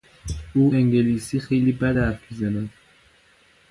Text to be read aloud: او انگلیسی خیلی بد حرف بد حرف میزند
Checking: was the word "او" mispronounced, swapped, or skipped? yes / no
no